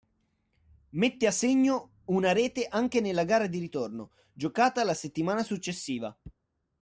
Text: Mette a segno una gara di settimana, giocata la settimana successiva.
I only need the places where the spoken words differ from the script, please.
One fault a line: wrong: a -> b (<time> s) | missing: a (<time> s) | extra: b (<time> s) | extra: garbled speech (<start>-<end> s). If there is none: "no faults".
extra: rete anche nella (2.3 s)
wrong: settimana -> ritorno (3.6 s)